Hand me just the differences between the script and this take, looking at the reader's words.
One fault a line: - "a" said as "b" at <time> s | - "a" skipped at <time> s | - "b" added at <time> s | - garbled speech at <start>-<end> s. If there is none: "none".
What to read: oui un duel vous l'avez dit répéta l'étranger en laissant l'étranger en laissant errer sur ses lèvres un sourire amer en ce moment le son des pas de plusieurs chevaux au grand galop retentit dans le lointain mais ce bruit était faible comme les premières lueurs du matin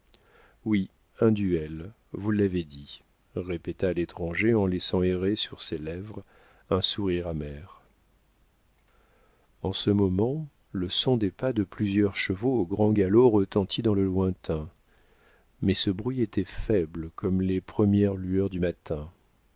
- "l'étranger en laissant" skipped at 5.0 s